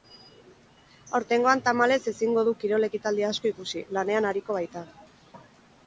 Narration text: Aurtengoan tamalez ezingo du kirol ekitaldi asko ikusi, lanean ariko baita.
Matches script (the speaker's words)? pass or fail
pass